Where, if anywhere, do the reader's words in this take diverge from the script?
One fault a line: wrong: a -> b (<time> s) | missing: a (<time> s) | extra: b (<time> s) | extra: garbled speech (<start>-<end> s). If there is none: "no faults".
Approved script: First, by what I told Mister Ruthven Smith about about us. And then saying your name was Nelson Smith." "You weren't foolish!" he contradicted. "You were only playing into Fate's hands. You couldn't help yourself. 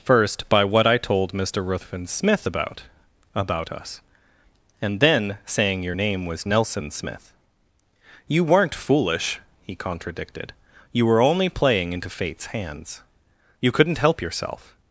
no faults